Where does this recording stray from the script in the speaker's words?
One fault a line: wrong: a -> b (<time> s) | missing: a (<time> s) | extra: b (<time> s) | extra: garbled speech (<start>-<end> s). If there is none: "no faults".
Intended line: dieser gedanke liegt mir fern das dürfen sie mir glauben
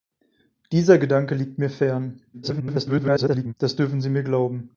extra: garbled speech (2.3-3.5 s)